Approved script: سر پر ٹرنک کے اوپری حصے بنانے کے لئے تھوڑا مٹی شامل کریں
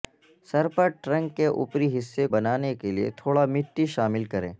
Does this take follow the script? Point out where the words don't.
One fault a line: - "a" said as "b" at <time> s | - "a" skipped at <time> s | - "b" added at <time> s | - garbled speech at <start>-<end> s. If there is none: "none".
none